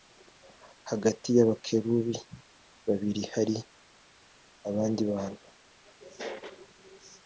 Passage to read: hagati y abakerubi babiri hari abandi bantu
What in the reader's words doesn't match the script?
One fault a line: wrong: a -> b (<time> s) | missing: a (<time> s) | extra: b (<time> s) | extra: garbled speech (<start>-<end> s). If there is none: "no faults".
no faults